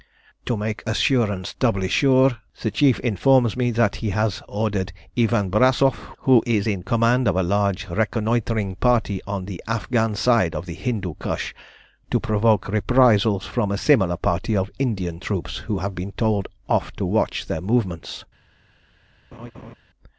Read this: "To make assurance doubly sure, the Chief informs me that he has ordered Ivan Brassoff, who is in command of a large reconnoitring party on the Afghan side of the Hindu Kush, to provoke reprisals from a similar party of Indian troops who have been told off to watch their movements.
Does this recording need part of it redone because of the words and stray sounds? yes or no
yes